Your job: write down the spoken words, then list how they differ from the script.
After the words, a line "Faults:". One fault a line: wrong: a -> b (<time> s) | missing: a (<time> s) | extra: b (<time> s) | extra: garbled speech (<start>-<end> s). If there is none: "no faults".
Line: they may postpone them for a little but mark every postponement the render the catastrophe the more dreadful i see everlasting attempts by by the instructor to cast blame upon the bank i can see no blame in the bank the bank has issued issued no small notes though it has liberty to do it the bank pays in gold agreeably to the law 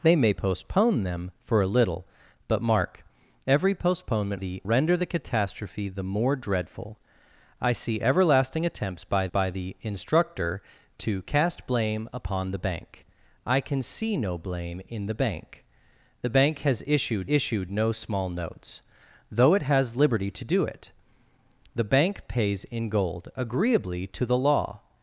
they may postpone them for a little but mark every postponement the render the catastrophe the more dreadful i see everlasting attempts by by the instructor to cast blame upon the bank i can see no blame in the bank the bank has issued issued no small notes though it has liberty to do it the bank pays in gold agreeably to the law
Faults:
no faults